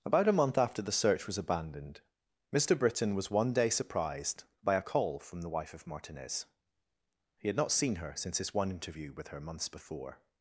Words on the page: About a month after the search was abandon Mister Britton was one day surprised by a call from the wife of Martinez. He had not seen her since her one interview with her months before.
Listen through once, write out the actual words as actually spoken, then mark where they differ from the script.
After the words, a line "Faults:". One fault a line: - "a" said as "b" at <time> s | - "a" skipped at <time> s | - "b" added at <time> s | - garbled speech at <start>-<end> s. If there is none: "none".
About a month after the search was abandoned Mister Britton was one day surprised by a call from the wife of Martinez. He had not seen her since his one interview with her months before.
Faults:
- "abandon" said as "abandoned" at 1.4 s
- "her" said as "his" at 8.4 s